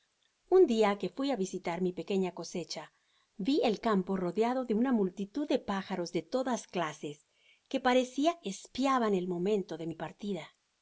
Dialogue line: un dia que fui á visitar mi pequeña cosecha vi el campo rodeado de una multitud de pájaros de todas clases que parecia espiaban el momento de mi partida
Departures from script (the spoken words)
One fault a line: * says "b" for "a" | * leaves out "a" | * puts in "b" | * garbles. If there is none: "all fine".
all fine